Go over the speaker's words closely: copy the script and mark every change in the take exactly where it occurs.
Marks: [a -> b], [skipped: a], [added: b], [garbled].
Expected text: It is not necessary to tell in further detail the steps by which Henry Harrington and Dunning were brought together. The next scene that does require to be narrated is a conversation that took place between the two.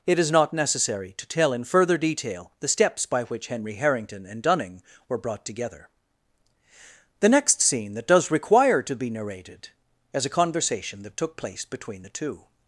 It is not necessary to tell in further detail the steps by which Henry Harrington and Dunning were brought together. The next scene that does require to be narrated is a conversation that took place between the two.